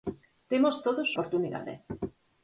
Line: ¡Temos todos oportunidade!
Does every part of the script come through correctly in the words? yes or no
yes